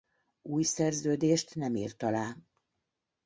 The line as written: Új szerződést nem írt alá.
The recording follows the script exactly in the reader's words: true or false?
true